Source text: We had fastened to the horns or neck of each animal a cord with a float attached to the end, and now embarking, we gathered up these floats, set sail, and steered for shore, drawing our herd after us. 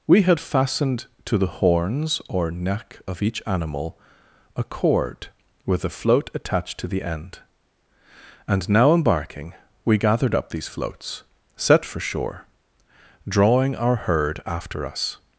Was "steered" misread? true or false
true